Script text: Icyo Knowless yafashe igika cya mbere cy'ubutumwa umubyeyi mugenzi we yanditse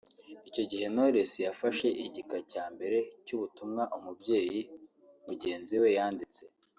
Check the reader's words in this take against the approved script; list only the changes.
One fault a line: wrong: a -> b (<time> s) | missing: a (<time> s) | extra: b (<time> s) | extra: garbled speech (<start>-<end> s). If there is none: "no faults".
extra: gihe (0.7 s)